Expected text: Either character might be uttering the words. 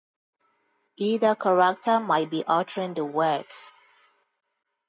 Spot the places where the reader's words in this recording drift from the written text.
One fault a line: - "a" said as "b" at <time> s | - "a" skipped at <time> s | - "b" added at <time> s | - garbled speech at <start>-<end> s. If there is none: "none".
none